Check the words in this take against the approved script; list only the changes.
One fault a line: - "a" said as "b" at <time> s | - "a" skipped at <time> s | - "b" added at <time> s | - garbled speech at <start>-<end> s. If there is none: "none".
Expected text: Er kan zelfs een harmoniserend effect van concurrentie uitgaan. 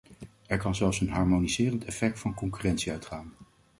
none